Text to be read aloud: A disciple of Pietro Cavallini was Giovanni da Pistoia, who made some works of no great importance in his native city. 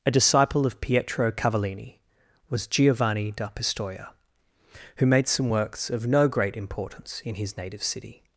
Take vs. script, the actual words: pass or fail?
pass